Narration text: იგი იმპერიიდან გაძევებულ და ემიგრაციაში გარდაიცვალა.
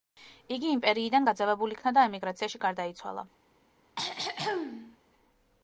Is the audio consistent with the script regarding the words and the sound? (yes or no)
no